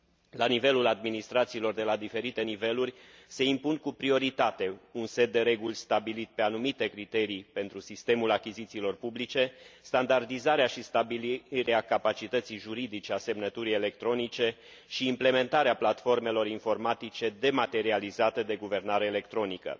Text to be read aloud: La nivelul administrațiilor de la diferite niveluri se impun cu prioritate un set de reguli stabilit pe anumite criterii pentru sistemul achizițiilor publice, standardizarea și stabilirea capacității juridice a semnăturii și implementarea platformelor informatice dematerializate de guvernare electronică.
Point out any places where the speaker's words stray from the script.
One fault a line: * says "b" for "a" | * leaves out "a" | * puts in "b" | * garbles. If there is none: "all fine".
* puts in "electronice"